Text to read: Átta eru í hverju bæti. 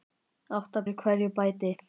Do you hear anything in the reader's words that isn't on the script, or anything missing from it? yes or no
no